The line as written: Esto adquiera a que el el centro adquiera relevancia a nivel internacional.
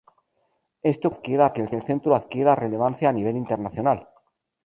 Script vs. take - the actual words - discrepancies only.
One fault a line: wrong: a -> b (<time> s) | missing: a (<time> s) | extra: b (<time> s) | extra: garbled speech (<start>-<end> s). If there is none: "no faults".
no faults